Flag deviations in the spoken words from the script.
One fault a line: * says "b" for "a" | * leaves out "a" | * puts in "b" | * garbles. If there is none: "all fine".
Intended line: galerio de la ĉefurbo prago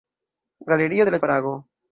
* leaves out "ĉefurbo"